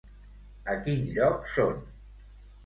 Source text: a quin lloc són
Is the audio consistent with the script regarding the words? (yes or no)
yes